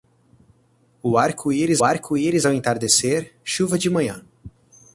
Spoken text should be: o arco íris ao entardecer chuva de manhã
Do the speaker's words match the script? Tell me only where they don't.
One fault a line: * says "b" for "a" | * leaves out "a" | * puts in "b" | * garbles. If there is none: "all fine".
* puts in "arco íris"